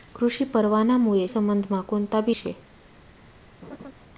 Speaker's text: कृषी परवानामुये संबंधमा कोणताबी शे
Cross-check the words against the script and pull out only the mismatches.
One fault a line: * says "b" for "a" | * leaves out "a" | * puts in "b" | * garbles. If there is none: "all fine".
all fine